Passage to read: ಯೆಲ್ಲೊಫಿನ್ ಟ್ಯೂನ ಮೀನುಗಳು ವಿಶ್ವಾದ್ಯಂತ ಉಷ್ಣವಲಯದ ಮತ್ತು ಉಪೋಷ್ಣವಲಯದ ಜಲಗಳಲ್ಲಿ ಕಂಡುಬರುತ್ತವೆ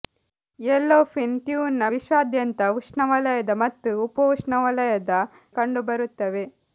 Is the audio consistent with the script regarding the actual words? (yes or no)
no